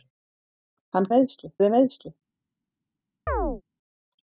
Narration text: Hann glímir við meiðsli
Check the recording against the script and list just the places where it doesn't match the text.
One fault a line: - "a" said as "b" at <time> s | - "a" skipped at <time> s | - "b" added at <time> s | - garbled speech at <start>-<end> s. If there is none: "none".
- "glímir" said as "meiðsli" at 1.1 s